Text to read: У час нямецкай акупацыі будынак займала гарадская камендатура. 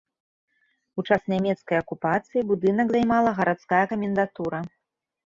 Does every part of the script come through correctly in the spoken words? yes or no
yes